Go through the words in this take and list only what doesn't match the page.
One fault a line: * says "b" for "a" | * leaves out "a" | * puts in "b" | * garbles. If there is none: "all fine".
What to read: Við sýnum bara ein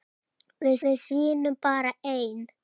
* puts in "við"